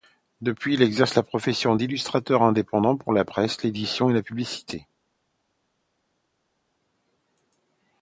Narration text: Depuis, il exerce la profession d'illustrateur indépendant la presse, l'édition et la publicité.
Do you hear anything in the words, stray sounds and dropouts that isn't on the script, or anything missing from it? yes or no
yes